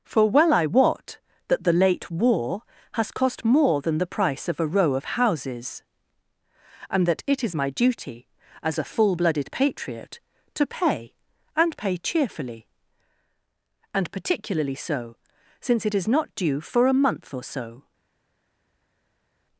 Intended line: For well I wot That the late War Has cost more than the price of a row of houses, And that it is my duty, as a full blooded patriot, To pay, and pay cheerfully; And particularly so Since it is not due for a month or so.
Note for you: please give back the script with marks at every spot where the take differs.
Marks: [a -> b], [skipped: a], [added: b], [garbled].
For well I wot That the late War Has cost more than the price of a row of houses, And that it is my duty, as a full blooded patriot, To pay, and pay cheerfully; And particularly so Since it is not due for a month or so.